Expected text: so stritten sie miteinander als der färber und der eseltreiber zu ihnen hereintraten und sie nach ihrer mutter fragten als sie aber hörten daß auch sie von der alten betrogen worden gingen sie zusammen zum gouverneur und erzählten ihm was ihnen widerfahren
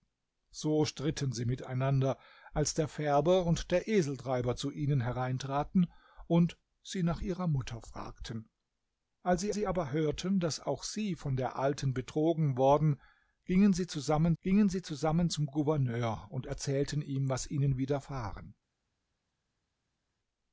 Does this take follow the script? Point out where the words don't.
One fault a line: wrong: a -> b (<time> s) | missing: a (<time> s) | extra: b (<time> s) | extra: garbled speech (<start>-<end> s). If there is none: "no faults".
extra: sie (9.5 s)
extra: gingen sie zusammen (14.4 s)